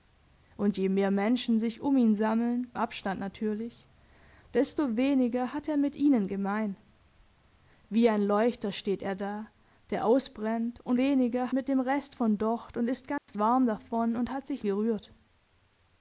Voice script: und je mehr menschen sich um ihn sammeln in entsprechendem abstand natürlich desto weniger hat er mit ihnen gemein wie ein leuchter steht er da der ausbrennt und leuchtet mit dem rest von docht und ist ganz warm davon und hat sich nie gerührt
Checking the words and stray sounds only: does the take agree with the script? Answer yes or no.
no